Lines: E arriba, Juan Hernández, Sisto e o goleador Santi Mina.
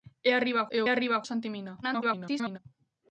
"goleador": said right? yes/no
no